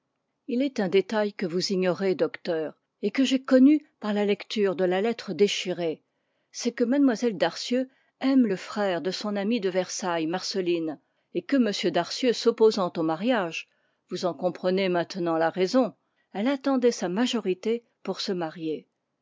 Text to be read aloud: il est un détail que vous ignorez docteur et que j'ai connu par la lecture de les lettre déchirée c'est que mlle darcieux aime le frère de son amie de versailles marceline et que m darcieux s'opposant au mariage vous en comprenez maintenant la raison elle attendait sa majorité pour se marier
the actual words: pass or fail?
fail